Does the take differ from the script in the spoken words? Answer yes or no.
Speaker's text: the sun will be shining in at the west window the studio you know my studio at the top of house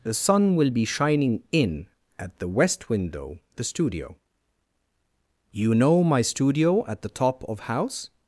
no